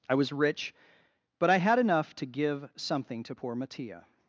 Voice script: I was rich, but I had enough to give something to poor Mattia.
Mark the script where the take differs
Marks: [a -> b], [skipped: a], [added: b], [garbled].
I was rich, but I had enough to give something to poor Mattia.